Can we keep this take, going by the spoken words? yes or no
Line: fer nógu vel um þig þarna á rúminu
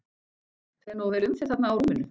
yes